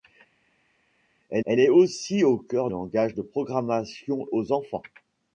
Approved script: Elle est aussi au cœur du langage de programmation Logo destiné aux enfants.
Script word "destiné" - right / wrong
wrong